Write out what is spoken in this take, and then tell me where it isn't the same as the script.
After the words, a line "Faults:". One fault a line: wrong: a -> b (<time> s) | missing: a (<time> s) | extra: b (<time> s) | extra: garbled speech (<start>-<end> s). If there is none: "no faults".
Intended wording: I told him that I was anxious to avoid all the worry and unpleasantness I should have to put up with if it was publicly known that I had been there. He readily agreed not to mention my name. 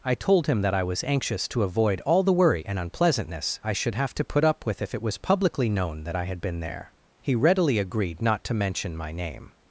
I told him that I was anxious to avoid all the worry and unpleasantness I should have to put up with if it was publicly known that I had been there. He readily agreed not to mention my name.
Faults:
no faults